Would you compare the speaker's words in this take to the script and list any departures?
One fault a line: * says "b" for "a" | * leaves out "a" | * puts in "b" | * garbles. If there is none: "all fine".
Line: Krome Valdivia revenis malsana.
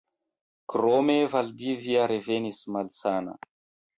all fine